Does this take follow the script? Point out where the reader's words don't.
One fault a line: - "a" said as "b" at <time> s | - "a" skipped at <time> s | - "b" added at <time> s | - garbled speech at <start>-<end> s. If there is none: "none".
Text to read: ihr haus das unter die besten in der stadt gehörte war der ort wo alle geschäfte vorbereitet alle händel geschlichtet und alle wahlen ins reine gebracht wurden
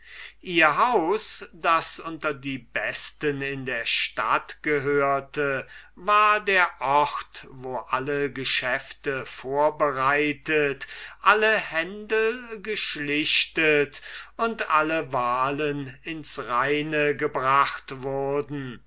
none